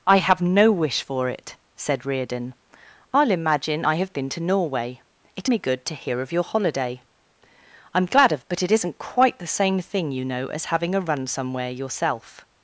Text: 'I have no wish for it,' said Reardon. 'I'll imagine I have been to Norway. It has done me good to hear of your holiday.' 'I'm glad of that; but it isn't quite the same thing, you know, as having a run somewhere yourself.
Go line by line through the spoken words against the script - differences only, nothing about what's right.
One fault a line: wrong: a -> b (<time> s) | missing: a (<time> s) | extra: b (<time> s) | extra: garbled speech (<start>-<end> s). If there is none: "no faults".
missing: has done (5.5 s)
missing: that (8.4 s)